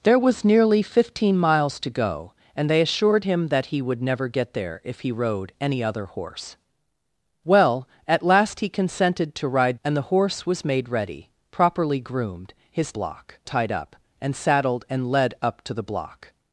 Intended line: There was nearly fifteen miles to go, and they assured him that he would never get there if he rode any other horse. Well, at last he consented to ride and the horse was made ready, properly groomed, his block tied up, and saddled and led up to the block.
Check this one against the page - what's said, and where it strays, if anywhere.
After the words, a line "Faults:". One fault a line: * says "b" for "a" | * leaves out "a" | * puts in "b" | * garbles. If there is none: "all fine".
There was nearly fifteen miles to go, and they assured him that he would never get there if he rode any other horse. Well, at last he consented to ride and the horse was made ready, properly groomed, his block tied up, and saddled and led up to the block.
Faults:
all fine